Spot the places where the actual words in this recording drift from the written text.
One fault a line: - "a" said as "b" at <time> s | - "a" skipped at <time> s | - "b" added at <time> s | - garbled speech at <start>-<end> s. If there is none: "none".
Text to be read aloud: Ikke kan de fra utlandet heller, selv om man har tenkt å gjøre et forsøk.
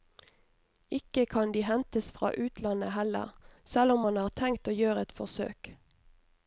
- "hentes" added at 1.7 s